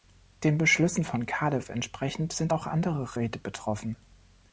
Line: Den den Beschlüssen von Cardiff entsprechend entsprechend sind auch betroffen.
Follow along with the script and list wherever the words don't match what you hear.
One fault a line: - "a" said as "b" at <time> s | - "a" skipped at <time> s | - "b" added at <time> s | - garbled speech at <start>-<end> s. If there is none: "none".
- "den" skipped at 0.6 s
- "entsprechend" skipped at 2.3 s
- "andere Räte" added at 2.7 s